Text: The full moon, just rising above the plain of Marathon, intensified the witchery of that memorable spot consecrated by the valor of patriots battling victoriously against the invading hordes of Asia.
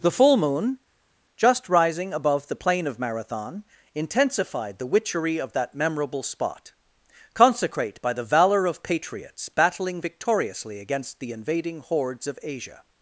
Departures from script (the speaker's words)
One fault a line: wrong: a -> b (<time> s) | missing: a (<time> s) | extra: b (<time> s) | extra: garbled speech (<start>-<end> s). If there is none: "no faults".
wrong: consecrated -> consecrate (7.3 s)